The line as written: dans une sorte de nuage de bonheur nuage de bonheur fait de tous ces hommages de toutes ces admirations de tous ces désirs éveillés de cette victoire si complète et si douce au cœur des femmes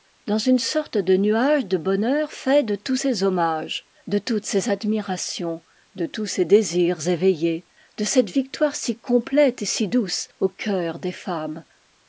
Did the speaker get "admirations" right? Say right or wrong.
right